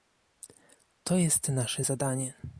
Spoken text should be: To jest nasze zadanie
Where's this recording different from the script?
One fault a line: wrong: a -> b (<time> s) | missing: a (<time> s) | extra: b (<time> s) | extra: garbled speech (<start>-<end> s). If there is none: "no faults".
no faults